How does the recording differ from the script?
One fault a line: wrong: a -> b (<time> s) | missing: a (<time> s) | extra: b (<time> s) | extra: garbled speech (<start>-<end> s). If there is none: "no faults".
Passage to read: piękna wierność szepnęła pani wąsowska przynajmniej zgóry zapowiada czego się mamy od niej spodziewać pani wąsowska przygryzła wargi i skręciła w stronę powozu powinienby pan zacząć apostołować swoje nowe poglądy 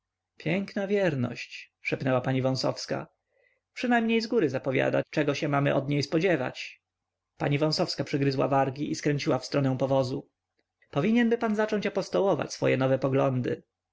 no faults